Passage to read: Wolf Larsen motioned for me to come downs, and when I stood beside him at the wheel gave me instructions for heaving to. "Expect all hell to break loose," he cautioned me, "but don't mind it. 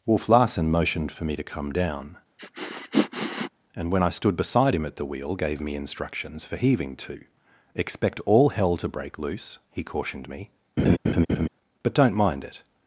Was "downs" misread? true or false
true